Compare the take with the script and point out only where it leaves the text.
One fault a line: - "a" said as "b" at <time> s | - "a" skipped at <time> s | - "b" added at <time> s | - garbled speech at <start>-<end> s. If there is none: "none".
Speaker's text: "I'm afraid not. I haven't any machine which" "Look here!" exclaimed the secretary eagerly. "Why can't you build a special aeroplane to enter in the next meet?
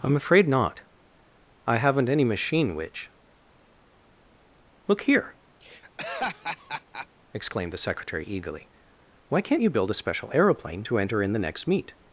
none